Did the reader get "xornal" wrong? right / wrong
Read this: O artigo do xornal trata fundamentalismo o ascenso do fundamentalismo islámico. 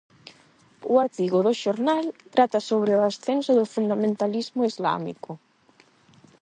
right